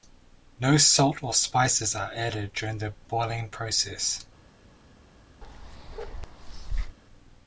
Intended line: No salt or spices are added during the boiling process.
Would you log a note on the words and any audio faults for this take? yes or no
yes